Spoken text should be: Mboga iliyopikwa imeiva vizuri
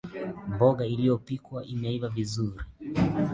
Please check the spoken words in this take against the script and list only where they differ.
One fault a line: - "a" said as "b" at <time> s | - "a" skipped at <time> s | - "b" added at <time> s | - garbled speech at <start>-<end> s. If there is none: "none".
none